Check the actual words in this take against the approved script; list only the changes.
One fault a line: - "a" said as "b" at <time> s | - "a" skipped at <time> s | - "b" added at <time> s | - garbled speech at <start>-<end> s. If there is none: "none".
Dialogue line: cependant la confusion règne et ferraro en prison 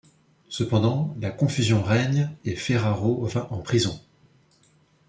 - "va" added at 3.3 s